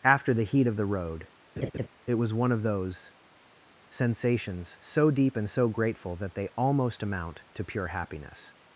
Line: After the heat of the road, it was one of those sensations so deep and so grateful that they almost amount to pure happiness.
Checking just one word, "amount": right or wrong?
right